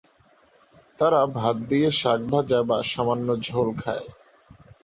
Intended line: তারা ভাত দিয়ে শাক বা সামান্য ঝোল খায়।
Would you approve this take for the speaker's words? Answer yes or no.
no